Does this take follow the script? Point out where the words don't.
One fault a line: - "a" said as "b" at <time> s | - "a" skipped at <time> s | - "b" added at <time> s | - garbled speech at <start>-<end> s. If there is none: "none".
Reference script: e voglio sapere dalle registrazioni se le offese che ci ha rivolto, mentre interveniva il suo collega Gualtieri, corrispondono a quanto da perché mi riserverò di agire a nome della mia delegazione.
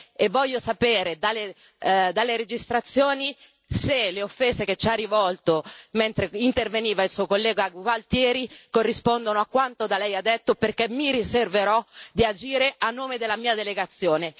- "lei detto" added at 10.0 s